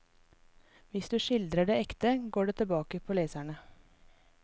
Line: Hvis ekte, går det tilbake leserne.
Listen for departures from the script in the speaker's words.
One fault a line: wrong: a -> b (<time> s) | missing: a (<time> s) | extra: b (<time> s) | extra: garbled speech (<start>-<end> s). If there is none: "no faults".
extra: du skildrer det (1.1 s)
extra: på (3.0 s)